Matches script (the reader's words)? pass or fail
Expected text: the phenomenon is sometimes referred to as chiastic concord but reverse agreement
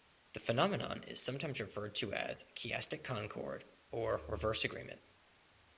fail